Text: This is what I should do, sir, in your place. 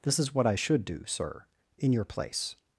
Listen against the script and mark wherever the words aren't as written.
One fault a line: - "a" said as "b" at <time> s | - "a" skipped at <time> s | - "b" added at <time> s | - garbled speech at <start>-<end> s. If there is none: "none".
none